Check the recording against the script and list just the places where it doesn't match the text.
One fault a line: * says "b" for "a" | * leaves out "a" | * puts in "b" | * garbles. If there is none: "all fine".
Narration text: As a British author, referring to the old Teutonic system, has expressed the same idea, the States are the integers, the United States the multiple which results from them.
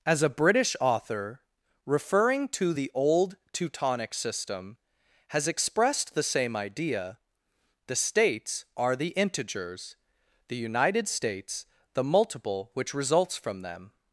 all fine